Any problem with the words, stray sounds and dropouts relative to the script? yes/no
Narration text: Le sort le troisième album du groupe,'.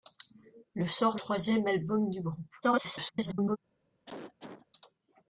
yes